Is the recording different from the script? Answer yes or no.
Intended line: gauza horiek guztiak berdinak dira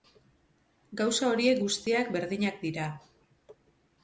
no